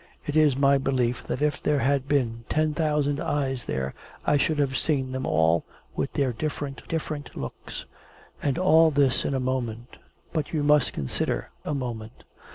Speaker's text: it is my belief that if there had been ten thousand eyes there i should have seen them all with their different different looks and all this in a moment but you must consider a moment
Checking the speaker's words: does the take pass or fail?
pass